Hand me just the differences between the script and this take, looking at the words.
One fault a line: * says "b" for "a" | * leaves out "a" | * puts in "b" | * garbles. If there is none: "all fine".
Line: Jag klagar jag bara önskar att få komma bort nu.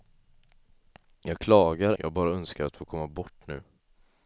all fine